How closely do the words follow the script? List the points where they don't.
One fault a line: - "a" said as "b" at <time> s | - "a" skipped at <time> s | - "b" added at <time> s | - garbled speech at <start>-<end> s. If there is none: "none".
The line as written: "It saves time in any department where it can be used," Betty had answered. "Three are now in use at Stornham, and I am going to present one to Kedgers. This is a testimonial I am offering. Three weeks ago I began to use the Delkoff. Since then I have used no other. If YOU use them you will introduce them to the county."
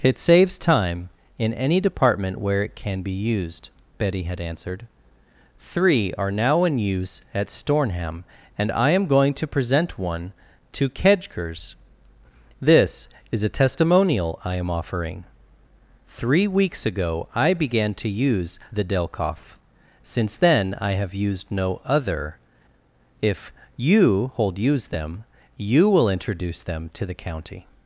- "hold" added at 24.3 s